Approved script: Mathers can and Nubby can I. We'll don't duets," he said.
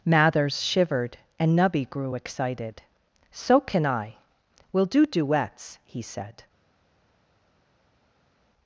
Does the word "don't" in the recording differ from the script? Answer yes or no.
yes